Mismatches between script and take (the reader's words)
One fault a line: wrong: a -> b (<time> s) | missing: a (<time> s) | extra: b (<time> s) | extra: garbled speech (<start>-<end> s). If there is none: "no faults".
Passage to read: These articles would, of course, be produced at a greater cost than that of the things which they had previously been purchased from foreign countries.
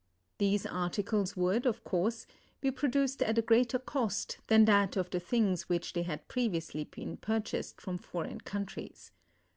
no faults